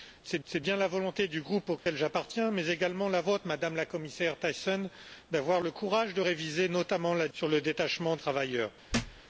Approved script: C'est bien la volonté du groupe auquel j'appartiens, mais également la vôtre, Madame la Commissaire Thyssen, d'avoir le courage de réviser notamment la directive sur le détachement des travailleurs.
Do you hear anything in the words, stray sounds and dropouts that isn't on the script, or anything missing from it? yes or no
yes